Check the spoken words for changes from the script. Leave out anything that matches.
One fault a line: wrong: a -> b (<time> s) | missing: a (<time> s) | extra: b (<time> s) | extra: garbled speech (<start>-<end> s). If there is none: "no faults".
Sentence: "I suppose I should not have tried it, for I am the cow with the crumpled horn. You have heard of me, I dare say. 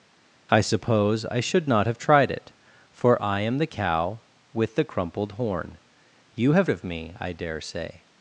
missing: heard (6.7 s)